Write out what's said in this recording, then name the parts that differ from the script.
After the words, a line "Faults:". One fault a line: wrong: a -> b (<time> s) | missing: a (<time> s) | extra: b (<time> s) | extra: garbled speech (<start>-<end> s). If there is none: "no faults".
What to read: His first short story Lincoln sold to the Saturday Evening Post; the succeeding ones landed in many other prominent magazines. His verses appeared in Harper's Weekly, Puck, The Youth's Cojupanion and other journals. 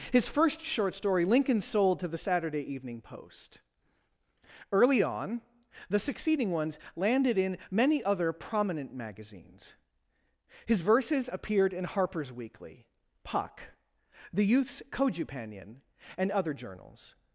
His first short story Lincoln sold to the Saturday Evening Post; early on the succeeding ones landed in many other prominent magazines. His verses appeared in Harper's Weekly, Puck, The Youth's Cojupanion and other journals.
Faults:
extra: early on (4.7 s)